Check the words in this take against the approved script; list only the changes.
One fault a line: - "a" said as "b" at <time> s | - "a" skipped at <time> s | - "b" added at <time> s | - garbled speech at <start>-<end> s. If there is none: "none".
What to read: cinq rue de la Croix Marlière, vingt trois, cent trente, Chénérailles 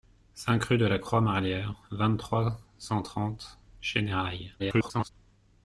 - garbled speech at 4.6-5.1 s